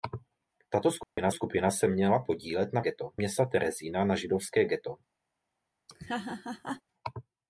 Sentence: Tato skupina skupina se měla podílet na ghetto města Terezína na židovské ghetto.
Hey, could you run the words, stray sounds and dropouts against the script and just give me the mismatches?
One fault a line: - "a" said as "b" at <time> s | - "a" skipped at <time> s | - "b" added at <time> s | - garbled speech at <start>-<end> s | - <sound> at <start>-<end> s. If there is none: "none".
- dropout at 1.0-1.2 s
- laugh at 5.9-6.8 s